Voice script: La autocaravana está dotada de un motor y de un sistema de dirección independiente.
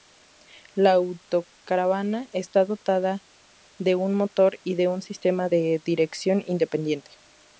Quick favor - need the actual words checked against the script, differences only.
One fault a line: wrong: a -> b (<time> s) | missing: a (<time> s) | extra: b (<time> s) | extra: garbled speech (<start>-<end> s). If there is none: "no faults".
no faults